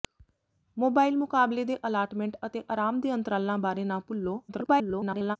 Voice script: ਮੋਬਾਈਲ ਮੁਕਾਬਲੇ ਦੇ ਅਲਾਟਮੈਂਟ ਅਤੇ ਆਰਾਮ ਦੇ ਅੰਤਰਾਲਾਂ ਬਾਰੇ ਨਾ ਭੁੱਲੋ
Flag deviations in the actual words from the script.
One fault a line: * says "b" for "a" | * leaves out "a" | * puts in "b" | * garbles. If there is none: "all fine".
* garbles